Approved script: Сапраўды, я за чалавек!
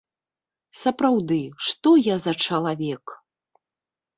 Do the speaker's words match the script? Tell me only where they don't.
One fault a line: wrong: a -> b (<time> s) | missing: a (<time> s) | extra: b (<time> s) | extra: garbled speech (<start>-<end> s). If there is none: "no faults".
extra: што (1.7 s)